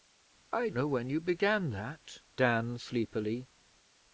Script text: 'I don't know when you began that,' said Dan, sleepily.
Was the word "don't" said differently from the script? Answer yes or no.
yes